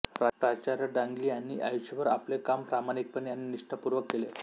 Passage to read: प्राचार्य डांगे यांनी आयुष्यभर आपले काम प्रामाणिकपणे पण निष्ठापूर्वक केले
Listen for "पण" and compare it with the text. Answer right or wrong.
wrong